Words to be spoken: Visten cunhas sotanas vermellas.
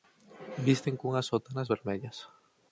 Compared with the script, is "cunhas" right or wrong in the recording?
right